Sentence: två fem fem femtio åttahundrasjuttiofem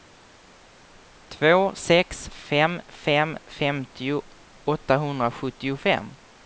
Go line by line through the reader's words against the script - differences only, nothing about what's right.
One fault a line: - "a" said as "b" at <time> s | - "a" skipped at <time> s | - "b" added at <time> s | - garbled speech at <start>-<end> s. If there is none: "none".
- "sex" added at 1.8 s